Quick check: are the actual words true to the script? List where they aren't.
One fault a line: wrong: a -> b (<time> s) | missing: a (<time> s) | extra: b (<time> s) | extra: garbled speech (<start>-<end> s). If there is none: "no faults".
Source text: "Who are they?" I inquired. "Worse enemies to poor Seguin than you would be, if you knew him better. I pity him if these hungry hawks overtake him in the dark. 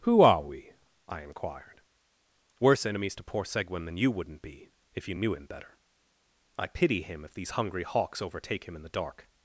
wrong: they -> we (0.4 s)
wrong: would -> wouldn't (4.1 s)